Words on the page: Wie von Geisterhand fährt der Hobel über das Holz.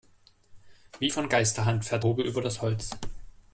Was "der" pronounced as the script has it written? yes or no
no